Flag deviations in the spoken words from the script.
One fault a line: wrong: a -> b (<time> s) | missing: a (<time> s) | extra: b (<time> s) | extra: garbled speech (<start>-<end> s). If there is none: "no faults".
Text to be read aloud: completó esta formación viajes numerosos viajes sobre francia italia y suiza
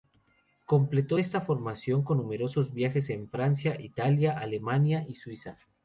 wrong: viajes -> con (2.0 s)
wrong: sobre -> en (3.1 s)
extra: alemania (4.4 s)